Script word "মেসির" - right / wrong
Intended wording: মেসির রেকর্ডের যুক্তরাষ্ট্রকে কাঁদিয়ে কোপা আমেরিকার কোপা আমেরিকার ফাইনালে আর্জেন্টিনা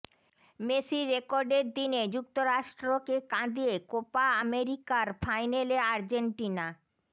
right